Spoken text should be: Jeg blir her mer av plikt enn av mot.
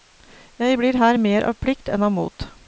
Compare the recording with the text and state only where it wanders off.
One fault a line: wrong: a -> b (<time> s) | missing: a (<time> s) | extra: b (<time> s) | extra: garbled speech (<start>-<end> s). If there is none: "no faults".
no faults